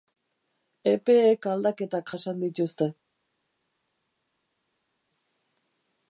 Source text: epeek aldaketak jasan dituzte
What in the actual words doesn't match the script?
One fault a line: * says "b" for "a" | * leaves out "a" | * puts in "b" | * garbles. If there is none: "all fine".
all fine